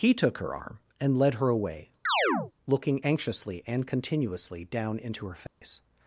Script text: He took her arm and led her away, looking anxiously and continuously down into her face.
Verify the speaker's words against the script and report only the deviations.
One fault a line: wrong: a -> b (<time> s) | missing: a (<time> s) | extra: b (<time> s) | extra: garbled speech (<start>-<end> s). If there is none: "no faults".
no faults